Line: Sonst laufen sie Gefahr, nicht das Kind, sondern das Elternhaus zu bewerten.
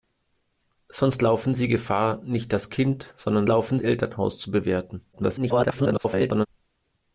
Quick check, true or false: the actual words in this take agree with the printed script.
false